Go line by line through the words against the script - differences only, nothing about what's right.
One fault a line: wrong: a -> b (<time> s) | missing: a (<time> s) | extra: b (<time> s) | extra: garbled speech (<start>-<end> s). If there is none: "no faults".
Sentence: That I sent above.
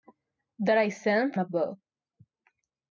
no faults